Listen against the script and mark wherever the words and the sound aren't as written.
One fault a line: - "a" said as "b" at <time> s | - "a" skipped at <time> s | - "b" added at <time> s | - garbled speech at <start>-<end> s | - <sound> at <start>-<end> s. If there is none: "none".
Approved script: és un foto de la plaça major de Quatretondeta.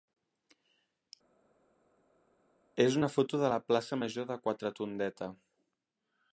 - "un" said as "una" at 3.0 s